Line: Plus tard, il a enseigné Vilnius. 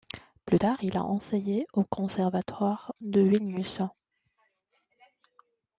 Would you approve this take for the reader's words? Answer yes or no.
no